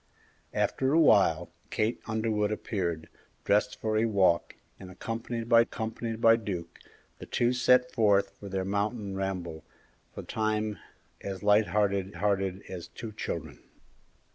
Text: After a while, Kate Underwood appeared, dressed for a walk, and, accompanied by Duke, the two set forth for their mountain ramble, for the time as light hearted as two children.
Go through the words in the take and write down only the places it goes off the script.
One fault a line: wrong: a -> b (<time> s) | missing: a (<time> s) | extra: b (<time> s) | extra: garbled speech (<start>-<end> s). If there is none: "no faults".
extra: accompanied by (5.6 s)
missing: the (10.2 s)
extra: hearted (12.2 s)